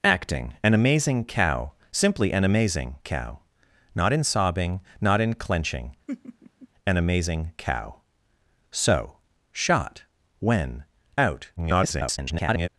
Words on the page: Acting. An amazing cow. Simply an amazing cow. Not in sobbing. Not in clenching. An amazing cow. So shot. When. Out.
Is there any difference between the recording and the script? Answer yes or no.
yes